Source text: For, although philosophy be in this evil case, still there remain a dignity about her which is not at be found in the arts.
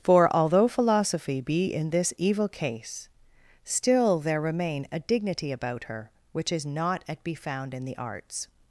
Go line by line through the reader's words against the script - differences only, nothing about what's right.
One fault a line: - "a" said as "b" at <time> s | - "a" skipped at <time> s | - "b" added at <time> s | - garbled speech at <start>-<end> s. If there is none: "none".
none